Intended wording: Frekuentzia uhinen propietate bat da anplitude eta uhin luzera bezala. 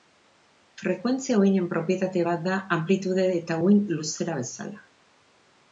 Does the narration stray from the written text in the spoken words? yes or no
no